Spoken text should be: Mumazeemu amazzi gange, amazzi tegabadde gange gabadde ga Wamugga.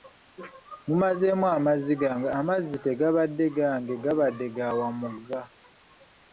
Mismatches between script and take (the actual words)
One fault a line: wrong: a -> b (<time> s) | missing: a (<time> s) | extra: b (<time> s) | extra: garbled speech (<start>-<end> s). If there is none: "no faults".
no faults